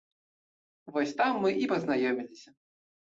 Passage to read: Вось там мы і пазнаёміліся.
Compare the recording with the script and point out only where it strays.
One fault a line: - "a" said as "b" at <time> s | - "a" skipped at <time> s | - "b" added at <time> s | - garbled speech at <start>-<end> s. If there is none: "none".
none